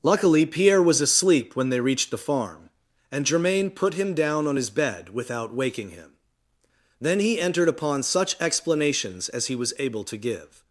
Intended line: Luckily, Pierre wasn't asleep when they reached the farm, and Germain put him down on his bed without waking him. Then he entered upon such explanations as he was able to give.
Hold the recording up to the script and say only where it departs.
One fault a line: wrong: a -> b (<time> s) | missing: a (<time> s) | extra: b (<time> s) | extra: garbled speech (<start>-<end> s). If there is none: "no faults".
wrong: wasn't -> was (0.8 s)